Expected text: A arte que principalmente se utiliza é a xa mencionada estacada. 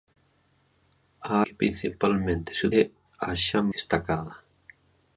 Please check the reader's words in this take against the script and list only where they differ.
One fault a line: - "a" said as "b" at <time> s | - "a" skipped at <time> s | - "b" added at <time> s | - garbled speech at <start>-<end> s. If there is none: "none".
- "arte" skipped at 1.3 s
- "utiliza" skipped at 2.6 s
- "mencionada" skipped at 3.6 s